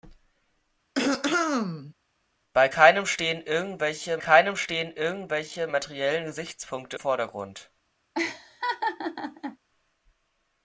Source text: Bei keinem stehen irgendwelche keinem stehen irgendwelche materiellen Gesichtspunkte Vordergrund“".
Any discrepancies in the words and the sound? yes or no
yes